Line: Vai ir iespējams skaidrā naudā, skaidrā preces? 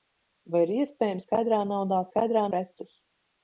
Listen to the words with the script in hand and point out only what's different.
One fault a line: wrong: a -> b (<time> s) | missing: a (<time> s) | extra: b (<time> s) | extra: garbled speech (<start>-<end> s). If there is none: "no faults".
no faults